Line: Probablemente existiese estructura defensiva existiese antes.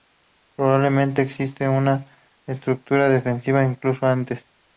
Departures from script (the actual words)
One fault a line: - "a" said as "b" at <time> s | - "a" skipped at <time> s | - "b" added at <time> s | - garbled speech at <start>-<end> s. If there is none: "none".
- "una" added at 1.7 s
- "existiese" said as "incluso" at 3.7 s